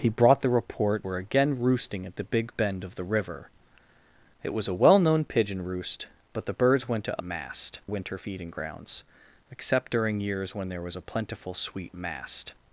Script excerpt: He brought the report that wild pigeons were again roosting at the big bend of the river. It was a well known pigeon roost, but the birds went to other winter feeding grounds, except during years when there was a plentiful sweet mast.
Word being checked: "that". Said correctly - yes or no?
no